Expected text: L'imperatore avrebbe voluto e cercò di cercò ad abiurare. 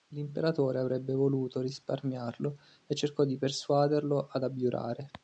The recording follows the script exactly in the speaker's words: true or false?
false